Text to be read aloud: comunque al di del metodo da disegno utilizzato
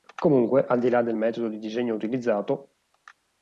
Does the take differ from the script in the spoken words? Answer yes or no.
yes